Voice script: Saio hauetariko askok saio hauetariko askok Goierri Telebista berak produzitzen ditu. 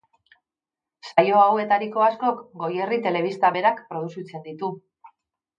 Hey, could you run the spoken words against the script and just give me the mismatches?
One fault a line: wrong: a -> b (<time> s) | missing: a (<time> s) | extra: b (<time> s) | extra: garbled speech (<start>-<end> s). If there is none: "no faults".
missing: saio hauetariko askok (2.4 s)